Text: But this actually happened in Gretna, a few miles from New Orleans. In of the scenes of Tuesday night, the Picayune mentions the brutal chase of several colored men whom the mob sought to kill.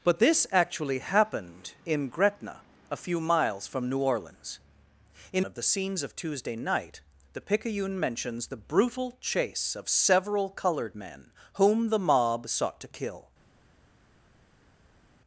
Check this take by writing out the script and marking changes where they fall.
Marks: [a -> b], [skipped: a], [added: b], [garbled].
But this actually happened in Gretna, a few miles from New Orleans. In of the scenes of Tuesday night, the Picayune mentions the brutal chase of several colored men whom the mob sought to kill.